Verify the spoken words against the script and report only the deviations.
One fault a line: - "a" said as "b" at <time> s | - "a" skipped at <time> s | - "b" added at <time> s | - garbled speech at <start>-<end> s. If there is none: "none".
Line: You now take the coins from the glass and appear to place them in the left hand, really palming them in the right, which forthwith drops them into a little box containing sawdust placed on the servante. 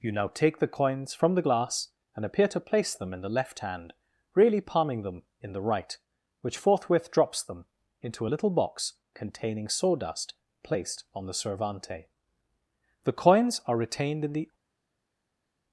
- "The coins are retained in the" added at 13.0 s